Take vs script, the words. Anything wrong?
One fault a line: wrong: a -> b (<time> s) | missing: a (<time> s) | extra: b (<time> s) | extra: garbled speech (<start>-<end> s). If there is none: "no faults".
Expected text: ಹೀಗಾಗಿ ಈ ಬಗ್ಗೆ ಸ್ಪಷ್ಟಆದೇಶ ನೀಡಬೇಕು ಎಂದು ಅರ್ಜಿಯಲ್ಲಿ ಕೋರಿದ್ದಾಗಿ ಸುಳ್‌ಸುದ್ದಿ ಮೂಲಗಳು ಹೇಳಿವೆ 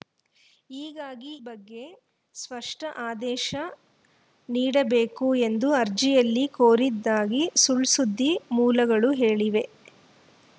missing: ಈ (1.3 s)